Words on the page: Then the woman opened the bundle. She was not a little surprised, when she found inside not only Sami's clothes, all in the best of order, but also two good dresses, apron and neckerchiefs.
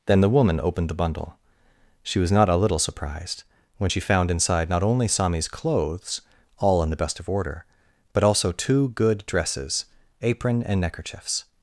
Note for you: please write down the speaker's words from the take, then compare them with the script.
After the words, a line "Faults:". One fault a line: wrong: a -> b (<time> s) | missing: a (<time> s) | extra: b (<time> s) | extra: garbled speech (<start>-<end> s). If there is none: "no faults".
Then the woman opened the bundle. She was not a little surprised, when she found inside not only Sami's clothes, all in the best of order, but also two good dresses, apron and neckerchiefs.
Faults:
no faults